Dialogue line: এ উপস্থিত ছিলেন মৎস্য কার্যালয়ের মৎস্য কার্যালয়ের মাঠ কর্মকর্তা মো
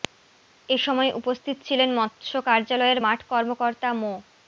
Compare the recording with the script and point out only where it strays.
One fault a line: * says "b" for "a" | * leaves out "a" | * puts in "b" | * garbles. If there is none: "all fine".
* puts in "সময়"
* leaves out "মৎস্য কার্যালয়ের"